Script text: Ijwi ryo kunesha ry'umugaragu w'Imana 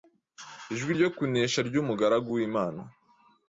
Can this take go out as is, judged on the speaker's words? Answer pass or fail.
pass